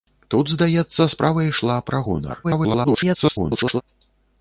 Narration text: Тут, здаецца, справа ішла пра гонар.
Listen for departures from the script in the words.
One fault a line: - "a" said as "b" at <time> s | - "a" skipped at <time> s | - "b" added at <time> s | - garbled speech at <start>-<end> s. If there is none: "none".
- garbled speech at 2.4-3.8 s